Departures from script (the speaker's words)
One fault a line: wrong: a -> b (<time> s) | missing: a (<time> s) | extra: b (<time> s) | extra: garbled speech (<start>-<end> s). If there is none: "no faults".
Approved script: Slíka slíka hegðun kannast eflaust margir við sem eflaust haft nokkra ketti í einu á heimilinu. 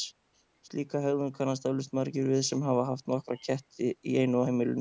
missing: slíka (1.0 s)
wrong: eflaust -> hafa (2.6 s)